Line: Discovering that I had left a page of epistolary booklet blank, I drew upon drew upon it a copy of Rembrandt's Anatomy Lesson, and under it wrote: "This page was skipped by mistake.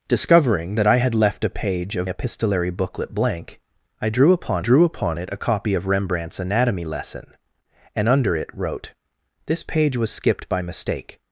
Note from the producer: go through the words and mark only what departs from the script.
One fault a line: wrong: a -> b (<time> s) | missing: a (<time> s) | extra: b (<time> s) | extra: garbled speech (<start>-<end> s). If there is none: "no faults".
no faults